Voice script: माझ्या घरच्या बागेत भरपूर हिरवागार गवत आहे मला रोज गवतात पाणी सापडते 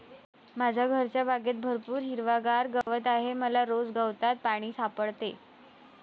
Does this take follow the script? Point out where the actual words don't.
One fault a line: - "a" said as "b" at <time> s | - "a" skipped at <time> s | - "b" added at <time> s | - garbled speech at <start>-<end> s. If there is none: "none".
none